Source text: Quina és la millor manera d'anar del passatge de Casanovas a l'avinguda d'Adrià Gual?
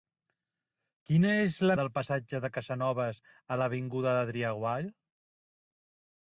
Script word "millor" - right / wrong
wrong